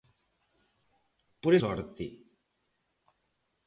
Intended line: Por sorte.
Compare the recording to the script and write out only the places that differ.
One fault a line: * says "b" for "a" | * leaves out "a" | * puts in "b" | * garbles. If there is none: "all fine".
all fine